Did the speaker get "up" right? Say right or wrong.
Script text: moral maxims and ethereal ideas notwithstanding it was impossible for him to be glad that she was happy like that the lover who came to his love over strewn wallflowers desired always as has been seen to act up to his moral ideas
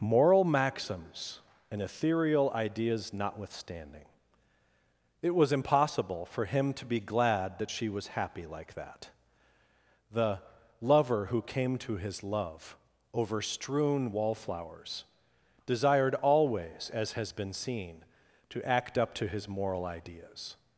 right